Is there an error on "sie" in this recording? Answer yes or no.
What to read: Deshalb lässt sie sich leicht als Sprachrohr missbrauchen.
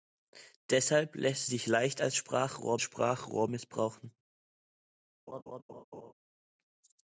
yes